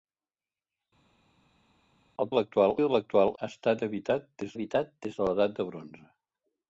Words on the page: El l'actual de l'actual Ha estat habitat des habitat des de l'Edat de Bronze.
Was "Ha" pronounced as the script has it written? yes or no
yes